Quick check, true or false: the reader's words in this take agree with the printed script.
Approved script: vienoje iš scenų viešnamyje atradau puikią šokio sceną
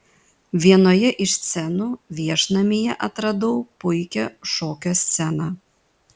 true